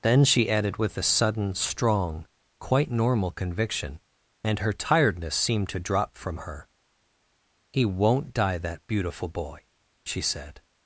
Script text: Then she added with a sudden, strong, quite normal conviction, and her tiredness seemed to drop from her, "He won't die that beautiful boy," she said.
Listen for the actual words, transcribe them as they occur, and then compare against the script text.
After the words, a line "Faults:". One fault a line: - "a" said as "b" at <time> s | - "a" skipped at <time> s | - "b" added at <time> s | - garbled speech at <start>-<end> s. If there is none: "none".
Then she added with a sudden, strong, quite normal conviction, and her tiredness seemed to drop from her, "He won't die that beautiful boy," she said.
Faults:
none